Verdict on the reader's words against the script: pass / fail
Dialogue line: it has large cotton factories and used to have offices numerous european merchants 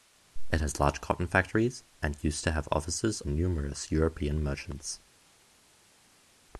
pass